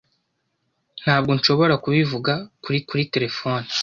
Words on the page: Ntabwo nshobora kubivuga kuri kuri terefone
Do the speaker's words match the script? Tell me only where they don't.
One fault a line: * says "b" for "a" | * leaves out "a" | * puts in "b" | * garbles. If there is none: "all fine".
all fine